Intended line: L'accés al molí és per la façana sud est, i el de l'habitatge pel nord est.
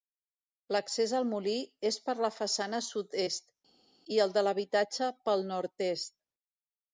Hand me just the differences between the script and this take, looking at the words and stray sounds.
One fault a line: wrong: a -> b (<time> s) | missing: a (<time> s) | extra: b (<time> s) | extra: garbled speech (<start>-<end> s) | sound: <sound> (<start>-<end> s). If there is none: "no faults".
no faults